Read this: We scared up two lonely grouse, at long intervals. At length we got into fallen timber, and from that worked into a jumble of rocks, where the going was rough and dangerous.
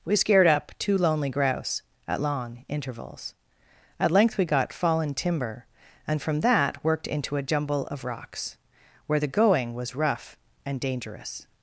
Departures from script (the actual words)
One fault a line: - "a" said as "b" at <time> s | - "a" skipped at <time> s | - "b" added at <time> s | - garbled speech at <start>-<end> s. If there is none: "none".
- "into" skipped at 4.7 s